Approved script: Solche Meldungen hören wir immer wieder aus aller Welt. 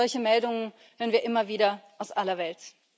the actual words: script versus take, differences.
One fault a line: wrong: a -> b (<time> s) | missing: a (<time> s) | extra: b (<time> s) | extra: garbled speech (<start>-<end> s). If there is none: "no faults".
no faults